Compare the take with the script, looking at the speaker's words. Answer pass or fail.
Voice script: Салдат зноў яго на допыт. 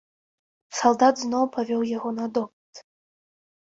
fail